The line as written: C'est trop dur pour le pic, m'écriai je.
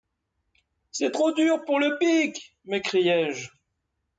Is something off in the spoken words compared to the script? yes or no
no